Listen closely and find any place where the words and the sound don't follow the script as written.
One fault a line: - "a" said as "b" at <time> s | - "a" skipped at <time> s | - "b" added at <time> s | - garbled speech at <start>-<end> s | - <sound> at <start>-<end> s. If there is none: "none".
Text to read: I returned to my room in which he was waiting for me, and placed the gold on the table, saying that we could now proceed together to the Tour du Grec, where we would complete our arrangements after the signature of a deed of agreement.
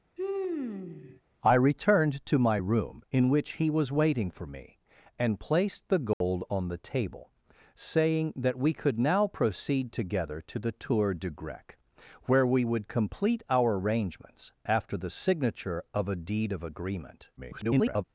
- sigh at 0.2-1.2 s
- dropout at 6.1-6.2 s
- garbled speech at 17.4-18.0 s